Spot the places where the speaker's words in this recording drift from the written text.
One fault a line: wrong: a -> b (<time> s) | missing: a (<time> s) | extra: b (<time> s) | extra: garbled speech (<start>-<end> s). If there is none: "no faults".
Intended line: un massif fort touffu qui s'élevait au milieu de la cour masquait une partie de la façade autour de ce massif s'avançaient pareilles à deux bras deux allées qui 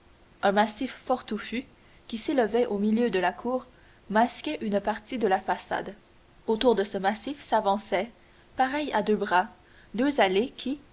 no faults